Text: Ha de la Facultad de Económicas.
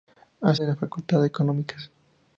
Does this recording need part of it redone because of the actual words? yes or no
no